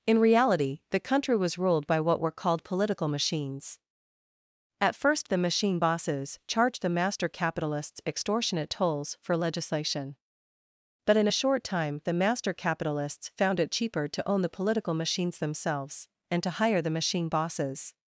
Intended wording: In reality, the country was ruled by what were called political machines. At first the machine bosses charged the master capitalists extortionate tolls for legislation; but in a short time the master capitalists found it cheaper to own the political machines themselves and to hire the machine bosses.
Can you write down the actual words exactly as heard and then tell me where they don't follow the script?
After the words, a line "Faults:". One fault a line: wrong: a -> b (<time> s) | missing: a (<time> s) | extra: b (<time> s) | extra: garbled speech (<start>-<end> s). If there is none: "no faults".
In reality, the country was ruled by what were called political machines. At first the machine bosses charged the master capitalists extortionate tolls for legislation; but in a short time the master capitalists found it cheaper to own the political machines themselves and to hire the machine bosses.
Faults:
no faults